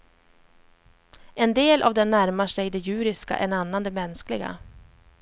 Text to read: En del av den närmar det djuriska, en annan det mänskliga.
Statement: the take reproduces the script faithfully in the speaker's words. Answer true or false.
false